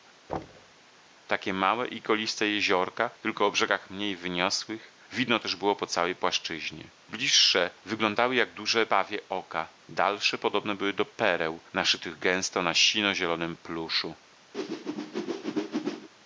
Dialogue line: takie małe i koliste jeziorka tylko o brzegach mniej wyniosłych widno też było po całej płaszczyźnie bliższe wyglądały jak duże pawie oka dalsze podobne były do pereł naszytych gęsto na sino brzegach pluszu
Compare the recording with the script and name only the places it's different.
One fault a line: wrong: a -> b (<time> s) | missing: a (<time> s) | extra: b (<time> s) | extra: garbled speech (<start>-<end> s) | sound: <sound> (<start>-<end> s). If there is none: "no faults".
sound: thud (0.3-0.7 s)
wrong: brzegach -> zielonym (13.1 s)
sound: whoosh (14.5-16.1 s)